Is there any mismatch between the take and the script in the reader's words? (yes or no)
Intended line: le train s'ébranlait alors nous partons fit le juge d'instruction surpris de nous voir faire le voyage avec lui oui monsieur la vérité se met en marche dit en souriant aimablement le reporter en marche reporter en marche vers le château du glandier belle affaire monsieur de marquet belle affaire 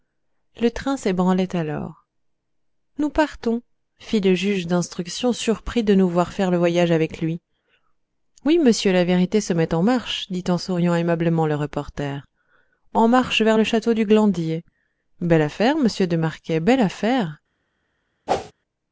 yes